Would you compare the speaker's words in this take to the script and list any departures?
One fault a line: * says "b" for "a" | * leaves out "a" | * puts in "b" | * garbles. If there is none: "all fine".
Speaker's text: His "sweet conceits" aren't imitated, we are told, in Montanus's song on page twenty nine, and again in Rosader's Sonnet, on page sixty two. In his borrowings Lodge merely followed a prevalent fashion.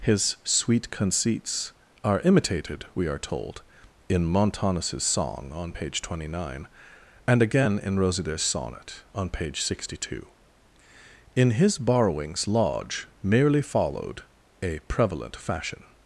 * says "are" for "aren't"